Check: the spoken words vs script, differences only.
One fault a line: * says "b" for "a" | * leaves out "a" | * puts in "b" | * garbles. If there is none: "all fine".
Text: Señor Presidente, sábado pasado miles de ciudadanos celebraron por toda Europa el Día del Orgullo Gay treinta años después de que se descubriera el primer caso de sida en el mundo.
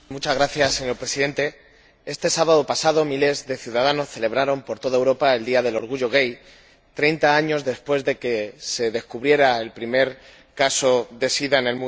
* puts in "este"